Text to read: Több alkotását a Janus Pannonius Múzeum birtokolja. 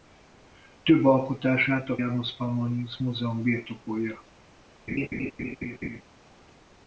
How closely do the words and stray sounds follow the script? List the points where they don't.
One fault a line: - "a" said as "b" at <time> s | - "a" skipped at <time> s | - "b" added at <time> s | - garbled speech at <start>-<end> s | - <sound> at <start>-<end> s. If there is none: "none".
- laugh at 4.9-6.0 s